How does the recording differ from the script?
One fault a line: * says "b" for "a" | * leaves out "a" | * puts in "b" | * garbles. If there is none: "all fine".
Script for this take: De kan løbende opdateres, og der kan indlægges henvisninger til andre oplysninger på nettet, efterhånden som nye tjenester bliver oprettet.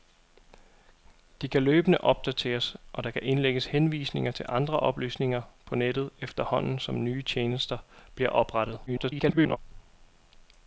* garbles